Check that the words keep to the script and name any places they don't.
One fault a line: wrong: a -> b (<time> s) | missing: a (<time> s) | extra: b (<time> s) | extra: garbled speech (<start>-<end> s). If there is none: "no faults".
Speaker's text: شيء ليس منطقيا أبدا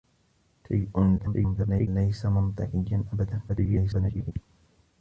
extra: garbled speech (1.2-1.9 s)
extra: garbled speech (3.5-4.3 s)